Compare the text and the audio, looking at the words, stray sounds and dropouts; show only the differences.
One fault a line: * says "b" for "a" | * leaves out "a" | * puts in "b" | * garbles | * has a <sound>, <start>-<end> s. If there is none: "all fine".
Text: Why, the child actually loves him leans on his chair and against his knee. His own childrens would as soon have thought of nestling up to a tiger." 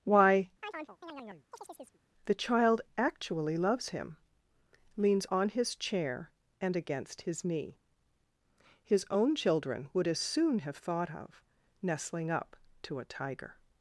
* has a chirp, 0.6-2.0 s
* says "children" for "childrens"